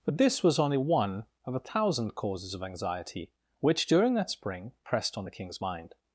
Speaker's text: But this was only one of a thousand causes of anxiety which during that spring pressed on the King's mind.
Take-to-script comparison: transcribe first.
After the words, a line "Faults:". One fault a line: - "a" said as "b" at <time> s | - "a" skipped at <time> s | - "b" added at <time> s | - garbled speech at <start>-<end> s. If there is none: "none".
But this was only one of a thousand causes of anxiety which during that spring pressed on the King's mind.
Faults:
none